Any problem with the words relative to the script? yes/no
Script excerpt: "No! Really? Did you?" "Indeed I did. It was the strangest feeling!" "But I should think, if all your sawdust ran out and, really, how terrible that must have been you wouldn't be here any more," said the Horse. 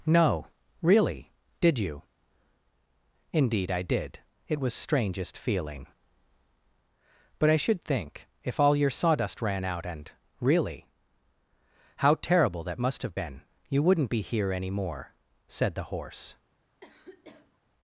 yes